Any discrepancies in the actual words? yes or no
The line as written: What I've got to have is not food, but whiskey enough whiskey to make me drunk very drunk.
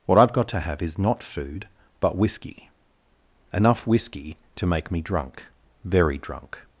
no